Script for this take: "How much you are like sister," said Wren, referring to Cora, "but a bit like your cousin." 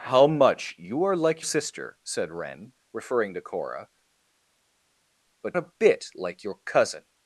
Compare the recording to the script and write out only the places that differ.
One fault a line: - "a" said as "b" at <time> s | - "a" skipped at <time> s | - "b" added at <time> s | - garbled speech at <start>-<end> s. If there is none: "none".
none